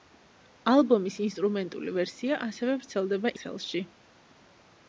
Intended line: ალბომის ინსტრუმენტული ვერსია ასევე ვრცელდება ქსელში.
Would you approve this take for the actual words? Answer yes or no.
yes